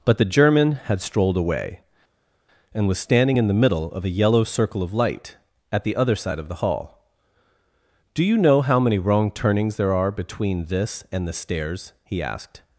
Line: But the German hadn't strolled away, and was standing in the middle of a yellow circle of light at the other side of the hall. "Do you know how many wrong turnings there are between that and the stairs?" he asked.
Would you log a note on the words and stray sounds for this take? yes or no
yes